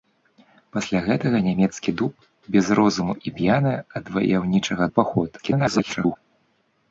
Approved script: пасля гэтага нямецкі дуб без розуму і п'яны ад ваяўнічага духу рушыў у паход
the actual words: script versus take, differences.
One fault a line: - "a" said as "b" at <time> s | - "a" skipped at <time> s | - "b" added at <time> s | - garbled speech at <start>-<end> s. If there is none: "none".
- "духу рушыў" skipped at 4.8 s
- garbled speech at 5.4-6.2 s